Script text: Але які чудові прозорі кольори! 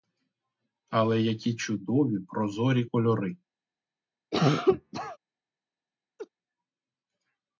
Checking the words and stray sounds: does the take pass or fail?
fail